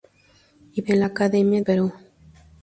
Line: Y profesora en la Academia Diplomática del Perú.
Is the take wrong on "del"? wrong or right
wrong